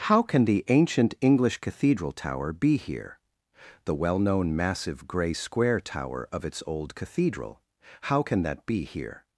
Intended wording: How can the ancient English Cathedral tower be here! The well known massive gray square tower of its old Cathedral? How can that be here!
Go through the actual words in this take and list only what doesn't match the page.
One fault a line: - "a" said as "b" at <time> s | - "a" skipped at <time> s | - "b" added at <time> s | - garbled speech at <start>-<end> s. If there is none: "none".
none